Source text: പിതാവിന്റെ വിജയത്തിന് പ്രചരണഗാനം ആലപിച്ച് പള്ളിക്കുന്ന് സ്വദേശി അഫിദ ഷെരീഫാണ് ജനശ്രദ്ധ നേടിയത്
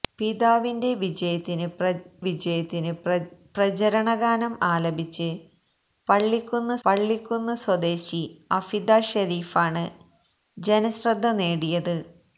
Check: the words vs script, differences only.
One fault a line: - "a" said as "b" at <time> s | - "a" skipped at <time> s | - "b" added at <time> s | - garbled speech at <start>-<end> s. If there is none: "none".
- "വിജയത്തിന്" added at 2.2 s
- "പള്ളിക്കുന്ന്" added at 6.8 s